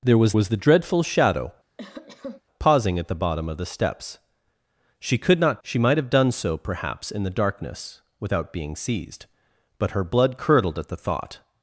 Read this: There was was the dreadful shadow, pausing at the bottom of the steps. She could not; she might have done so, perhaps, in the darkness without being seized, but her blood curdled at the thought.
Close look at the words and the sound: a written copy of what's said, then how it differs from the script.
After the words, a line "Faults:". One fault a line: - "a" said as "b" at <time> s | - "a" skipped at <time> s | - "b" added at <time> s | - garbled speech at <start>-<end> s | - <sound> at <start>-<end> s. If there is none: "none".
There was was the dreadful shadow, pausing at the bottom of the steps. She could not; she might have done so, perhaps, in the darkness without being seized, but her blood curdled at the thought.
Faults:
- cough at 1.8-2.4 s